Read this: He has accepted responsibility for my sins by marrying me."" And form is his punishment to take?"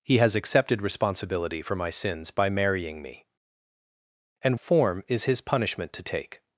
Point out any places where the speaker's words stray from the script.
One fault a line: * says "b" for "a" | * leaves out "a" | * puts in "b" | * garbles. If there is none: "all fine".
all fine